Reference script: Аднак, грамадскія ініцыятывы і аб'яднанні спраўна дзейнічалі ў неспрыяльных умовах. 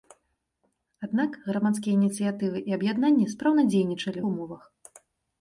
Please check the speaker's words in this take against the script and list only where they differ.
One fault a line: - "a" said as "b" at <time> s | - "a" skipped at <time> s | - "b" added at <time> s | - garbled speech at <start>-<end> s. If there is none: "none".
- "неспрыяльных" skipped at 4.2 s